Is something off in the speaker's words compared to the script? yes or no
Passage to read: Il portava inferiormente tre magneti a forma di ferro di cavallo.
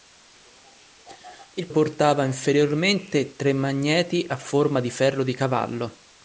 no